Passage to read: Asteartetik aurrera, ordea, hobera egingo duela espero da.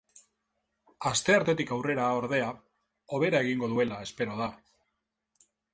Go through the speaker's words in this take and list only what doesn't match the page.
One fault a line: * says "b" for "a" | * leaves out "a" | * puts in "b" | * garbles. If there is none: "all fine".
all fine